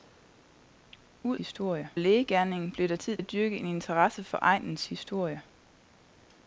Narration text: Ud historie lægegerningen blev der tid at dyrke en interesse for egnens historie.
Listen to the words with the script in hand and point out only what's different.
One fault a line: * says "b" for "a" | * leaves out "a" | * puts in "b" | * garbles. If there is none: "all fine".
all fine